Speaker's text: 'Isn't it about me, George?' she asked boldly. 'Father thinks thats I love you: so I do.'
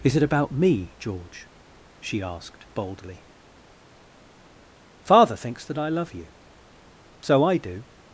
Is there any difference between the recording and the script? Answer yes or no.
yes